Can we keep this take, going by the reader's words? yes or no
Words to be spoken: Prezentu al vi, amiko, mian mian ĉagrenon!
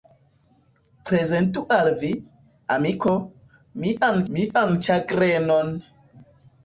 yes